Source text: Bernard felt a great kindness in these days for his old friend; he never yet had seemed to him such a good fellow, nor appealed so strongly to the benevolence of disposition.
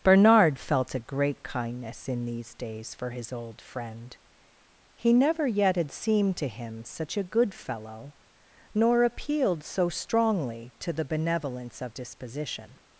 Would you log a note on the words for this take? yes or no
no